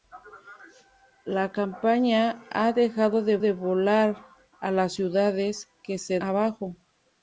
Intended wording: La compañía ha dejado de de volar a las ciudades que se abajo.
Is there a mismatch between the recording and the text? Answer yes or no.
no